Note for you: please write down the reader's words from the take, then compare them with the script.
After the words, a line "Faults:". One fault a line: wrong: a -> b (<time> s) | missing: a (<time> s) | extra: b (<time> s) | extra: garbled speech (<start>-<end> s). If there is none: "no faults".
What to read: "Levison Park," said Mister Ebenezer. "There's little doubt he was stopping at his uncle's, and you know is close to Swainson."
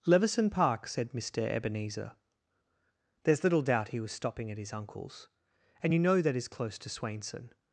"Levison Park," said Mister Ebenezer. "There's little doubt he was stopping at his uncle's, and you know that is close to Swainson."
Faults:
extra: that (6.2 s)